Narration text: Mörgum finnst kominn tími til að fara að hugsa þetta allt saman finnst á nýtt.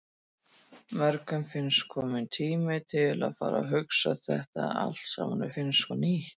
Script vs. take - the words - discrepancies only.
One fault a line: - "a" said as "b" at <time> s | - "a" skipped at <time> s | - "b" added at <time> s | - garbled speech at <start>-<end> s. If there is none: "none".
none